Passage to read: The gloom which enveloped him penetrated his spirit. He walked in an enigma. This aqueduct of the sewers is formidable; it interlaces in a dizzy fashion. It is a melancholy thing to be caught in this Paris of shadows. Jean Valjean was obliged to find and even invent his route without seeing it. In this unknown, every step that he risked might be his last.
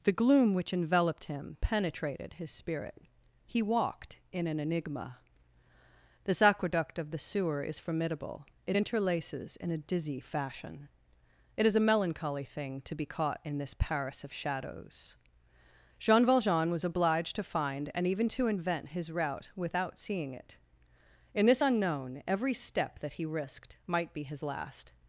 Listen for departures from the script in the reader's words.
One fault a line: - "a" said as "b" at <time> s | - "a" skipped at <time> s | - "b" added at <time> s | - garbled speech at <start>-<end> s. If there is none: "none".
- "sewers" said as "sewer" at 7.2 s
- "to" added at 18.3 s